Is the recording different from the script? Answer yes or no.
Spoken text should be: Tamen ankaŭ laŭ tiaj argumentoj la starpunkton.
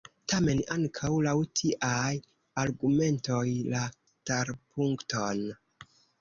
no